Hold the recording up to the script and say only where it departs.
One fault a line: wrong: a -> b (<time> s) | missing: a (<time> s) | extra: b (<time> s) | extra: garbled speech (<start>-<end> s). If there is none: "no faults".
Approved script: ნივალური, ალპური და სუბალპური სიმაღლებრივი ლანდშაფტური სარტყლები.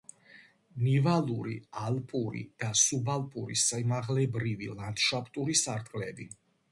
no faults